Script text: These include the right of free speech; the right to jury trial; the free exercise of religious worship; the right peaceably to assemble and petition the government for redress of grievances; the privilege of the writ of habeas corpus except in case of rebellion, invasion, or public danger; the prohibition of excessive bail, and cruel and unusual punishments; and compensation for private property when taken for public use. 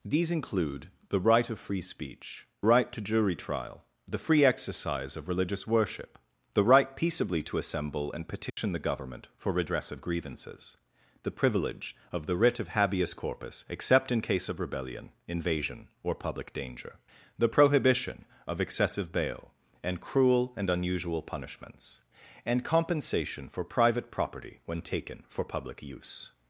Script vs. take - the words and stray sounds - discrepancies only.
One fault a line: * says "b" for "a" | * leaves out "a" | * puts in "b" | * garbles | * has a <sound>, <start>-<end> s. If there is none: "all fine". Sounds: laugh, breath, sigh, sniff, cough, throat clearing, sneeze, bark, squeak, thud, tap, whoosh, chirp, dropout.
* leaves out "the"
* has a dropout, 8.5-8.6 s